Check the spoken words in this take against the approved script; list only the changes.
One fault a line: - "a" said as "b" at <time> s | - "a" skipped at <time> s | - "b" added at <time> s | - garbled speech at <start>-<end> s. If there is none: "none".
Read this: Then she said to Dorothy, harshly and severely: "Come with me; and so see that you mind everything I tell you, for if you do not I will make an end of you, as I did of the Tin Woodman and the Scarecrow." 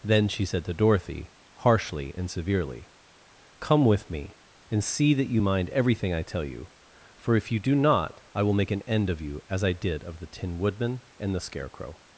- "so" skipped at 4.8 s